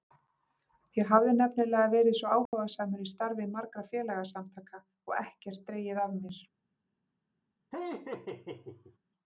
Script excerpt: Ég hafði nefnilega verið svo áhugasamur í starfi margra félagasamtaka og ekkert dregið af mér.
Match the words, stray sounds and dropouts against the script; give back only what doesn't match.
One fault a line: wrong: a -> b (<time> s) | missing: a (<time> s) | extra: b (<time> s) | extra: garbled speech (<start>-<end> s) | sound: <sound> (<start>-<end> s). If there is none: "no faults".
sound: dropout (2.5-2.5 s)
sound: laugh (7.7-9.0 s)